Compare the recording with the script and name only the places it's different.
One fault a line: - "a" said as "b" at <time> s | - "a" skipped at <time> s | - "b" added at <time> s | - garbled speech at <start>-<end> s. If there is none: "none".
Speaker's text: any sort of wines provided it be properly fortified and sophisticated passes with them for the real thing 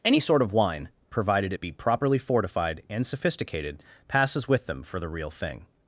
- "wines" said as "wine" at 0.5 s